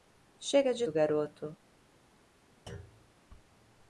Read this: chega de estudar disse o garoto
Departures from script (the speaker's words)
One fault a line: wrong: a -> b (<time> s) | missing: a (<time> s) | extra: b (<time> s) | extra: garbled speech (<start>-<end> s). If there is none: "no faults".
missing: estudar disse (0.8 s)